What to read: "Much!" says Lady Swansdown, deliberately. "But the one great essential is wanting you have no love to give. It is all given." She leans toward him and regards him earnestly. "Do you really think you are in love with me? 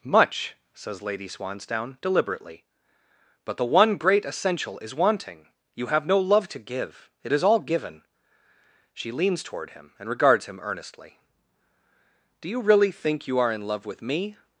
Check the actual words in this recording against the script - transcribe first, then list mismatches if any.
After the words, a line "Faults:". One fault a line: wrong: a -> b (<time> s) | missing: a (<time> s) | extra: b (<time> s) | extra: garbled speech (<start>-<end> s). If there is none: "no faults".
"Much!" says Lady Swansdown, deliberately. "But the one great essential is wanting you have no love to give. It is all given." She leans toward him and regards him earnestly. "Do you really think you are in love with me?
Faults:
no faults